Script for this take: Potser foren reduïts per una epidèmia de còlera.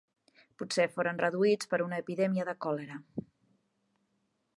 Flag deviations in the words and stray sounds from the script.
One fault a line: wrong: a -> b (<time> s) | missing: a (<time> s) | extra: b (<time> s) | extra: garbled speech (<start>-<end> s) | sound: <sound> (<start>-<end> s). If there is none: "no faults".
no faults